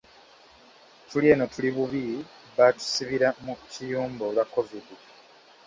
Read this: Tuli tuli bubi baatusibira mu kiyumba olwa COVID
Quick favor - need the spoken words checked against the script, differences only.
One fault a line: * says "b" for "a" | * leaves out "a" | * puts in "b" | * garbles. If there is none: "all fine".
* puts in "eno"